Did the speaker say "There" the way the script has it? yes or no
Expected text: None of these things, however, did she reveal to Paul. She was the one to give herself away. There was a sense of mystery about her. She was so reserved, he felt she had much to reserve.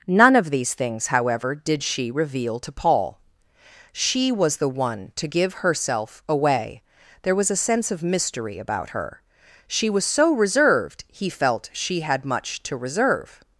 yes